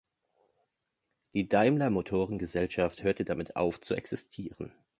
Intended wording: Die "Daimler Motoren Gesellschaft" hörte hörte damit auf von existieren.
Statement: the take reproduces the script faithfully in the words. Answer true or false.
false